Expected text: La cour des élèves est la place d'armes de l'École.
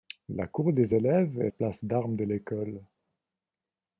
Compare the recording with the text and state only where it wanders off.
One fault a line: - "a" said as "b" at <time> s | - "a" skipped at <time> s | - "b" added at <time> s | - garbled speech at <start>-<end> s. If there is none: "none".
- "la" skipped at 1.5 s